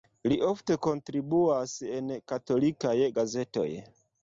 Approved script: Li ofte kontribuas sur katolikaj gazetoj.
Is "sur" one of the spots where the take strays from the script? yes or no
yes